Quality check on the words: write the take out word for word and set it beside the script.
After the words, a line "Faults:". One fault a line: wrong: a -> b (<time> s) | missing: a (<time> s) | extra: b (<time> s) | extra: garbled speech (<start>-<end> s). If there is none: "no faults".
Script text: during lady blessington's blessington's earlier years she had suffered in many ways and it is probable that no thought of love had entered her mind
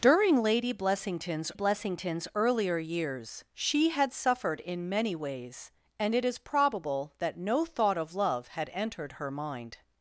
during lady blessington's blessington's earlier years she had suffered in many ways and it is probable that no thought of love had entered her mind
Faults:
no faults